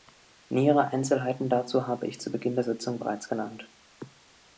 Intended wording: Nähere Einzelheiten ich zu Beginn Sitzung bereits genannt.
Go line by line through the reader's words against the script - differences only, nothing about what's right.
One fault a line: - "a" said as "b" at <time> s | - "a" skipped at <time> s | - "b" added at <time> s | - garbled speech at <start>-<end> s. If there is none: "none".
- "dazu habe" added at 1.5 s
- "der" added at 2.5 s